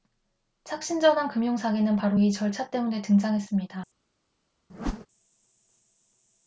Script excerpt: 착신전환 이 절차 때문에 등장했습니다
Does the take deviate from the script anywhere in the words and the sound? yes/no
yes